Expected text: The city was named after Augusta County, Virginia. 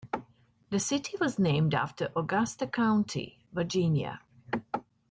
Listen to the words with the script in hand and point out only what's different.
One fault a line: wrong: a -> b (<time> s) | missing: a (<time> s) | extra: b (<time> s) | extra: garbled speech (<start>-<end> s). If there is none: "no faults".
no faults